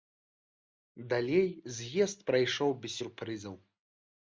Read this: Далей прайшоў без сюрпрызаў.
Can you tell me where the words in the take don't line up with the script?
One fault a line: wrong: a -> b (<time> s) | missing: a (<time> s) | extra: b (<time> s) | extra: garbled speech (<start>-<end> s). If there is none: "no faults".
extra: з'езд (1.8 s)